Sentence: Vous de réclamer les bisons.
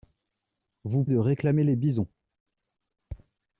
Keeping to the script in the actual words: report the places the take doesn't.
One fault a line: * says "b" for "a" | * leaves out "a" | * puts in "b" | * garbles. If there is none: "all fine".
all fine